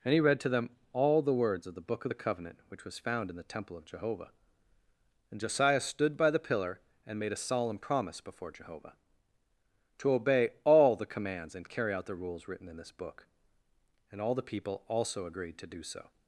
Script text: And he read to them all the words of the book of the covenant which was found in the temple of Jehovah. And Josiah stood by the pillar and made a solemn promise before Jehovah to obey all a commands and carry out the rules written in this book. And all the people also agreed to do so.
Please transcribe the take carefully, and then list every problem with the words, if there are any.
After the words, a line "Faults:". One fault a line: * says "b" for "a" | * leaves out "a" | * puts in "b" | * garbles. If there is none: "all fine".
And he read to them all the words of the book of the covenant which was found in the temple of Jehovah. And Josiah stood by the pillar and made a solemn promise before Jehovah to obey all the commands and carry out the rules written in this book. And all the people also agreed to do so.
Faults:
* says "the" for "a"